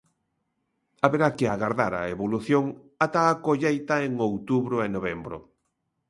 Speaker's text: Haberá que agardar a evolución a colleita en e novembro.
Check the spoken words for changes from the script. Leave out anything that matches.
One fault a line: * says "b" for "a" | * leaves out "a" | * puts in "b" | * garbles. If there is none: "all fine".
* puts in "ata"
* puts in "outubro"